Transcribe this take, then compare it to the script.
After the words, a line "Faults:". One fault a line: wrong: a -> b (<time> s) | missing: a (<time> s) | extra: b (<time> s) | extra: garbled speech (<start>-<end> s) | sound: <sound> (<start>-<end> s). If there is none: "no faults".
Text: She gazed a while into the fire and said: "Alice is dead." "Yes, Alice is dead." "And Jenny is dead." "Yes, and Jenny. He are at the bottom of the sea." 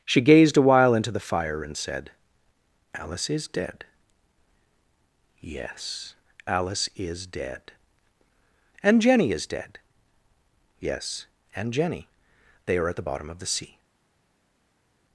She gazed a while into the fire and said: "Alice is dead." "Yes, Alice is dead." "And Jenny is dead." "Yes, and Jenny. They are at the bottom of the sea."
Faults:
wrong: He -> They (12.7 s)